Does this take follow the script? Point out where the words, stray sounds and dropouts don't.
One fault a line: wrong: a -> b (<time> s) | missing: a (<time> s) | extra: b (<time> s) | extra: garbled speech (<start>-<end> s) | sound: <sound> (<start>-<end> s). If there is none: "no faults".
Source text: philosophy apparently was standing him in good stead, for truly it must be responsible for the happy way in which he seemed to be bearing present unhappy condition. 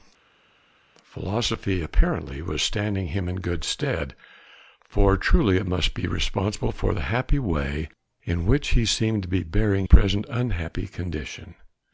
no faults